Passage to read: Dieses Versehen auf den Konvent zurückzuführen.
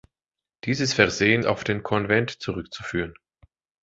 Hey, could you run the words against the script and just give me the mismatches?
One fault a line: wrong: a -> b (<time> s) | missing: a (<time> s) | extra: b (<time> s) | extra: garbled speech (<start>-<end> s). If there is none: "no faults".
no faults